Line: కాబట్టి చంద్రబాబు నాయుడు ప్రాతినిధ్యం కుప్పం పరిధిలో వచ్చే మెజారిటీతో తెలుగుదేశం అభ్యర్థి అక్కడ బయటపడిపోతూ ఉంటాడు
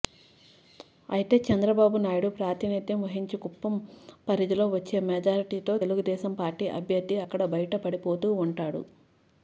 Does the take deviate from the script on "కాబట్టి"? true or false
true